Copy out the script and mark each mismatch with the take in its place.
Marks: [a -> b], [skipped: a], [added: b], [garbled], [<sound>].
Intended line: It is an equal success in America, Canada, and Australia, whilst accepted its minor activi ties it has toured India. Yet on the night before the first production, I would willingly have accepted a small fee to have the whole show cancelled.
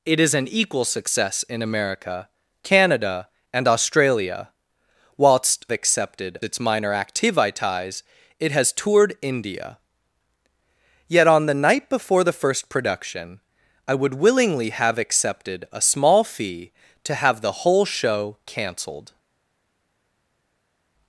It is an equal success in America, Canada, and Australia, whilst accepted its minor activi ties it has toured India. Yet on the night before the first production, I would willingly have accepted a small fee to have the whole show cancelled.